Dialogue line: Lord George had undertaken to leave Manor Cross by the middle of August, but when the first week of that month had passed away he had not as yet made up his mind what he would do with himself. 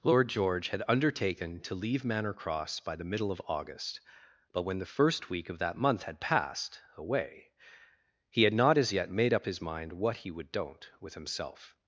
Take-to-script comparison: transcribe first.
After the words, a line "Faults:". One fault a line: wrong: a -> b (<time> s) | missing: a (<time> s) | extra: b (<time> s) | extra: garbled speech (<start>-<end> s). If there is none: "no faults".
Lord George had undertaken to leave Manor Cross by the middle of August, but when the first week of that month had passed away he had not as yet made up his mind what he would don't with himself.
Faults:
wrong: do -> don't (10.5 s)